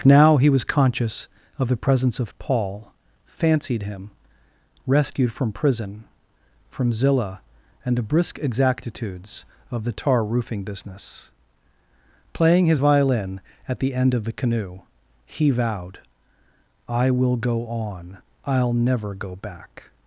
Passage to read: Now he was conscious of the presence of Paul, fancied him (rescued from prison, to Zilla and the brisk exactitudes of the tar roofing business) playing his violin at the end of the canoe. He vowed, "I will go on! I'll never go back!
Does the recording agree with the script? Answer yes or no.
no